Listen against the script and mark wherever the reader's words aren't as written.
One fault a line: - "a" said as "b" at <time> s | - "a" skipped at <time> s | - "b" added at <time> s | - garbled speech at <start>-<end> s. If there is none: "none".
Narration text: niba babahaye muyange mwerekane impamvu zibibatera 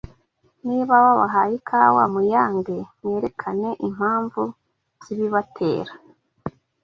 - "ikawa" added at 1.6 s